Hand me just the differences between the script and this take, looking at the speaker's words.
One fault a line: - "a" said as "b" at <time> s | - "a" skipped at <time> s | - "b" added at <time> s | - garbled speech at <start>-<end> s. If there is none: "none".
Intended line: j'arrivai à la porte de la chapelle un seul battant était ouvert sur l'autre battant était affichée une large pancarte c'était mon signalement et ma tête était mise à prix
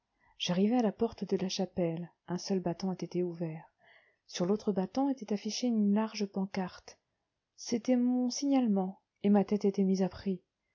none